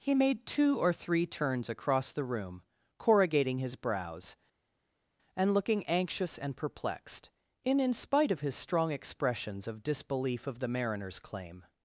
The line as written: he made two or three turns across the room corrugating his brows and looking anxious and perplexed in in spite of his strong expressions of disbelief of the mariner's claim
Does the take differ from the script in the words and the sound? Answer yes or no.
no